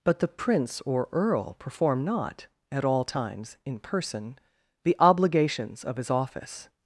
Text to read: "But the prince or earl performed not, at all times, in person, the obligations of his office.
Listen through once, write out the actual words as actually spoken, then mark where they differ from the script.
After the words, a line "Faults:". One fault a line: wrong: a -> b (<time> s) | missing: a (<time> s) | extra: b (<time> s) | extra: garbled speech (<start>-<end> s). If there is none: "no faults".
"But the prince or earl perform not, at all times, in person, the obligations of his office.
Faults:
wrong: performed -> perform (1.6 s)